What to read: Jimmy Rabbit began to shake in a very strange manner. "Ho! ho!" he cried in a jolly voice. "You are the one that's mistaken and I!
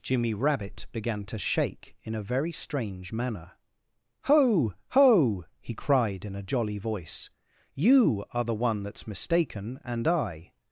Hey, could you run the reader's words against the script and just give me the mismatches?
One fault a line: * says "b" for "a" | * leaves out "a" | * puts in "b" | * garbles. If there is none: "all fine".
all fine